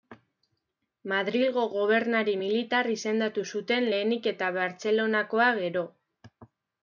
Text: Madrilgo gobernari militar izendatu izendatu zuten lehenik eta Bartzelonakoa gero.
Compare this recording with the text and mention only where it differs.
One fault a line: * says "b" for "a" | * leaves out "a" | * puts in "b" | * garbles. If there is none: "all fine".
* leaves out "izendatu"